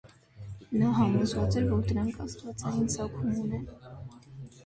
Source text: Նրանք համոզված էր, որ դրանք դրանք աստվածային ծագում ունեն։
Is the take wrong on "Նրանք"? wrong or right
wrong